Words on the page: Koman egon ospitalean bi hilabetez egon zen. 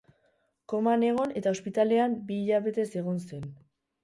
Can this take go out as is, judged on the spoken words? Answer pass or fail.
fail